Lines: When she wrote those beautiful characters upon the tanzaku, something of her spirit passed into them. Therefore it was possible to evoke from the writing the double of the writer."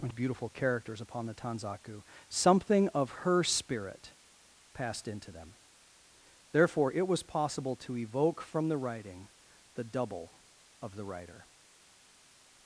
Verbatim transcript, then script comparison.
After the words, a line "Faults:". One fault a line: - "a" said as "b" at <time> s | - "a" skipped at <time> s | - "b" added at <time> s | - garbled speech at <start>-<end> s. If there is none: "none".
When beautiful characters upon the tanzaku, something of her spirit passed into them. Therefore it was possible to evoke from the writing the double of the writer."
Faults:
- "she wrote those" skipped at 0.1 s